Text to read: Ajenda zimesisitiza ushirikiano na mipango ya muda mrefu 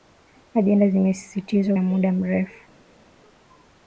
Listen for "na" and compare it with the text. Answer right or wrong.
wrong